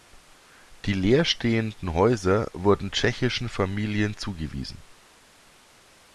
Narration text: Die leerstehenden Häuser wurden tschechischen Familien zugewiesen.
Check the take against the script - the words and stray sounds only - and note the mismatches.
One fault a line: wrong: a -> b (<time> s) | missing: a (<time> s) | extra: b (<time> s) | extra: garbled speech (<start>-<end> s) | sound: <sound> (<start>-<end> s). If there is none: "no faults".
no faults